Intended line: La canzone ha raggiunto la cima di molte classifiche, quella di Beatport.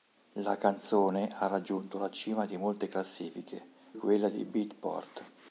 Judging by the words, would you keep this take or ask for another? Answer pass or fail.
pass